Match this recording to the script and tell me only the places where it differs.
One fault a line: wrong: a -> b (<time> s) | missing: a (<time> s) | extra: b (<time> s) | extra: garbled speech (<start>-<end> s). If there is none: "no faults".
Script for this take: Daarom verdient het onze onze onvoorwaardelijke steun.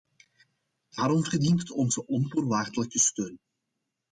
missing: onze (2.1 s)